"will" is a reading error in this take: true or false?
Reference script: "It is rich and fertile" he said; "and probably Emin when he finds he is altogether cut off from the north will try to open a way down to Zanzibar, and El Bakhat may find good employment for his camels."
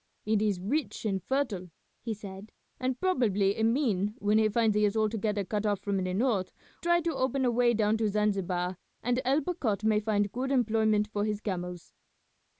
true